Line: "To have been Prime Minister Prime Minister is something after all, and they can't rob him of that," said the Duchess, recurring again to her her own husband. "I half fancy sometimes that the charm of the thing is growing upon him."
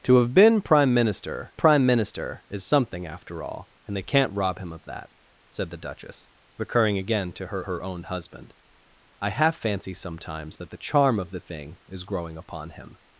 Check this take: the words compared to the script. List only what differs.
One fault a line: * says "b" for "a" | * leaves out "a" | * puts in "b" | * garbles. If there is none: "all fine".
all fine